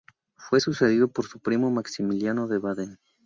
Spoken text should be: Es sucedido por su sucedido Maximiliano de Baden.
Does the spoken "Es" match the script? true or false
false